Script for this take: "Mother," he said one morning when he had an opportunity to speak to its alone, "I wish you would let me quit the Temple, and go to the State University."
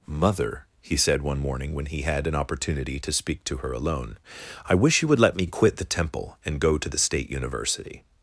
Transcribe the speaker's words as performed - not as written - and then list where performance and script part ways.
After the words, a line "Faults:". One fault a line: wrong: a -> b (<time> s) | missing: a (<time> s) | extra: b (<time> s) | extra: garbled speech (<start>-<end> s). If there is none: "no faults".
"Mother," he said one morning when he had an opportunity to speak to her alone, "I wish you would let me quit the Temple, and go to the State University."
Faults:
wrong: its -> her (3.6 s)